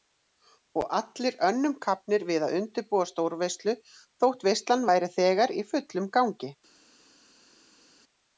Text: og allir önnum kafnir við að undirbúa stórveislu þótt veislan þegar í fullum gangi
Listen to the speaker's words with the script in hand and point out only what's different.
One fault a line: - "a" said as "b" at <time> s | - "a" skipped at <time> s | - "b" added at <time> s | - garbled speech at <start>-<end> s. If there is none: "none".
- "væri" added at 4.9 s